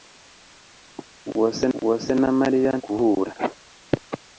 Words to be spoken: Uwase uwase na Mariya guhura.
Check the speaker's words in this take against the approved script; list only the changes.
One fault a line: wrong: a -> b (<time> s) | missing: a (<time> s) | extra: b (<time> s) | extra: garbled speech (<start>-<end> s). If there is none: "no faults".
no faults